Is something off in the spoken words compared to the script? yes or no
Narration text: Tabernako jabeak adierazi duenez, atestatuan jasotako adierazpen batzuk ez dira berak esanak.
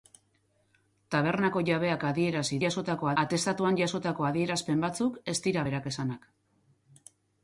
yes